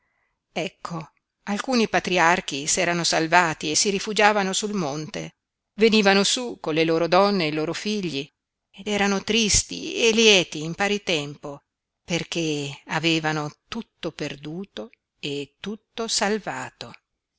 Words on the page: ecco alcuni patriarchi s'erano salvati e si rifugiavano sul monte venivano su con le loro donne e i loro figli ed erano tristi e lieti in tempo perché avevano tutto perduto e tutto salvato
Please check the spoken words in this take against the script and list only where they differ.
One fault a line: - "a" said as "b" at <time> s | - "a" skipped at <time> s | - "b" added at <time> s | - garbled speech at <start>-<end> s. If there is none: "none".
- "pari" added at 10.7 s